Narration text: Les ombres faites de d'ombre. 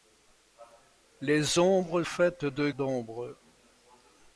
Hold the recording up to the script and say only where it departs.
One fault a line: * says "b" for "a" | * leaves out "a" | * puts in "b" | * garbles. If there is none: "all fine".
all fine